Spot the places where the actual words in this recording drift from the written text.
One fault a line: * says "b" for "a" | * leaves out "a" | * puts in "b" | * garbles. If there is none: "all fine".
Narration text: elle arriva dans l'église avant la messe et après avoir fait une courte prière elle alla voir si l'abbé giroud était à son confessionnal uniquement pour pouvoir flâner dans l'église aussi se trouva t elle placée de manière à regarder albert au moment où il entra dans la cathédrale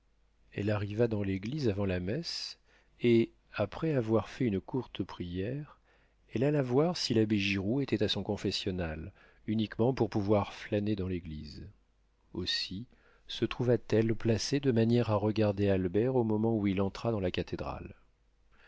all fine